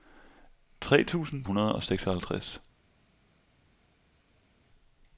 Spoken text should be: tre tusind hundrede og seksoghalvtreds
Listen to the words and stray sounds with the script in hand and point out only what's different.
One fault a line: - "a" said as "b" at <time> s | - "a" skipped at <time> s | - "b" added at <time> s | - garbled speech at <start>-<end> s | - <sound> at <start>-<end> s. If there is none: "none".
none